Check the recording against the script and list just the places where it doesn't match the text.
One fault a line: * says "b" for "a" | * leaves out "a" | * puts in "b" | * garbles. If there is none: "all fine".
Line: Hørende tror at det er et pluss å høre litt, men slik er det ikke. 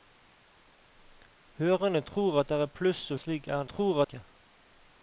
* leaves out "høre litt men"
* says "tror" for "det"